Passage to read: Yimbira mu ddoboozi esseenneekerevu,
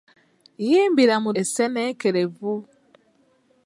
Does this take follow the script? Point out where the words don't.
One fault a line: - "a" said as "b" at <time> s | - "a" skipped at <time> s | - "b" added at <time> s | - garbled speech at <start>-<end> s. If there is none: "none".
- "ddoboozi" skipped at 1.3 s